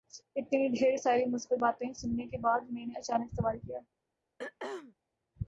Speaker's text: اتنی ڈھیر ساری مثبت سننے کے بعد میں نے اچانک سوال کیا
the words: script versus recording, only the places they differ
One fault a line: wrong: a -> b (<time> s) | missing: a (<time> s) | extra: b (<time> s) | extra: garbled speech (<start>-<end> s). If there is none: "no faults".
extra: باتیں (1.6 s)